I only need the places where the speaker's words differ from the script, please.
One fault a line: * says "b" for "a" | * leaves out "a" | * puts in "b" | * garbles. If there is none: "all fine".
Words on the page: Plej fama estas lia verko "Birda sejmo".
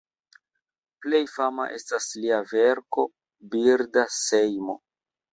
all fine